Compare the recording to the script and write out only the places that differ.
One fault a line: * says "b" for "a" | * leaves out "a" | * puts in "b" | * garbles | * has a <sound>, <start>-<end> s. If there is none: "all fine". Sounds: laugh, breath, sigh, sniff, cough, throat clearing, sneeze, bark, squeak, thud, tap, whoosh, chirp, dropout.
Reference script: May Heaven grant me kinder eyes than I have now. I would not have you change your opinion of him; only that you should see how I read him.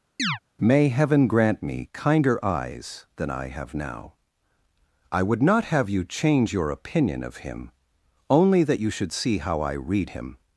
* has a chirp, 0.2-0.4 s